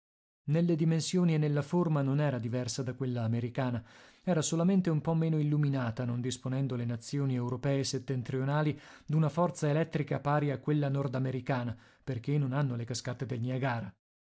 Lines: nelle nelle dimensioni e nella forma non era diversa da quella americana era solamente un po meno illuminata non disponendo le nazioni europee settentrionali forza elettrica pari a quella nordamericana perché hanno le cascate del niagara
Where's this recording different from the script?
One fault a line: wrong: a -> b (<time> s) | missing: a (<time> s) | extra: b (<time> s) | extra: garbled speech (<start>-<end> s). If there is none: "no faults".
missing: nelle (0.8 s)
extra: d'una (9.1 s)
extra: non (12.4 s)